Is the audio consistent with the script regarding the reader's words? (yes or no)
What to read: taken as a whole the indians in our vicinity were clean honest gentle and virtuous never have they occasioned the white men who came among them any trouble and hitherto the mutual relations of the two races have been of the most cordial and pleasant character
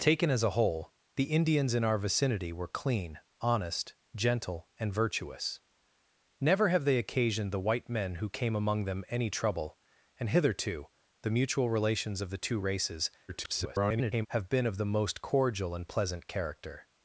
no